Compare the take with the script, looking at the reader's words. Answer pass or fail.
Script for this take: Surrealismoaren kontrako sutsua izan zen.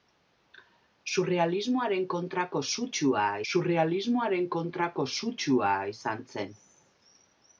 fail